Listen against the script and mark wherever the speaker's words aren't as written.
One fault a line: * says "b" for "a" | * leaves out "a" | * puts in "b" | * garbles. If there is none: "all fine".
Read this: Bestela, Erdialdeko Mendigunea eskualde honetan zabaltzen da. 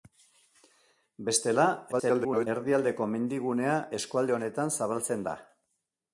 * garbles